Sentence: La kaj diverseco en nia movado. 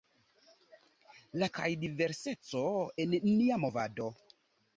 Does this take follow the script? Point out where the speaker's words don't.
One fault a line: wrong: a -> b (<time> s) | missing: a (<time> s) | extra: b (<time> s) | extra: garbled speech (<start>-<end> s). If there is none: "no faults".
no faults